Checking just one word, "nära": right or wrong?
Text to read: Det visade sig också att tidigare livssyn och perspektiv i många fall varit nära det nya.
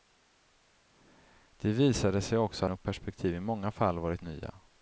wrong